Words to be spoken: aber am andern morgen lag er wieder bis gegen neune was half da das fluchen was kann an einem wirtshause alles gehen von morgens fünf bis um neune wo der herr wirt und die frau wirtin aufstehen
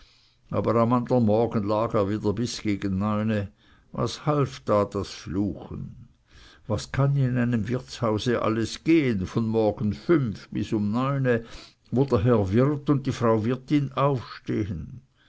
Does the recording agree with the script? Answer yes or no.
no